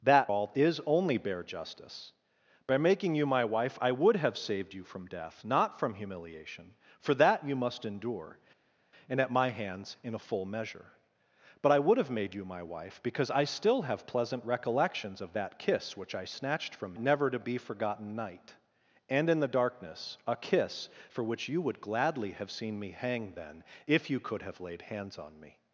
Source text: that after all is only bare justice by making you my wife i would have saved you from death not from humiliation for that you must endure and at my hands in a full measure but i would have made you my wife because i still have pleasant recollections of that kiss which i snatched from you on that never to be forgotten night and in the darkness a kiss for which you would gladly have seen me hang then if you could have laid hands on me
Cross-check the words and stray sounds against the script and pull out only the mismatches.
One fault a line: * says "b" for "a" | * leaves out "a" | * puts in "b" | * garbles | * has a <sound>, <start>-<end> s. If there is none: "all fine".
* leaves out "after"
* leaves out "you on that"